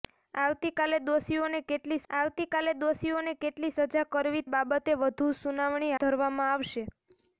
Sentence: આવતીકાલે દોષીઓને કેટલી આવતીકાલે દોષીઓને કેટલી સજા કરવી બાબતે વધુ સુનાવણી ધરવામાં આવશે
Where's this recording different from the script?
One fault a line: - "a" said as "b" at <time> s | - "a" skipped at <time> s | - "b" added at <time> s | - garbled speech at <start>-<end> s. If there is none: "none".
none